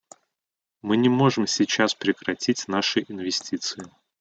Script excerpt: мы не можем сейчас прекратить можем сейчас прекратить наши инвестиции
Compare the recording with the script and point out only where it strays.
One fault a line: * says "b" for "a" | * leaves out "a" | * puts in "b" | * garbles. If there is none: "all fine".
* leaves out "можем сейчас прекратить"